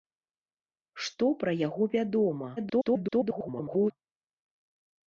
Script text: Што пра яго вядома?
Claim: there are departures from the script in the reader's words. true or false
true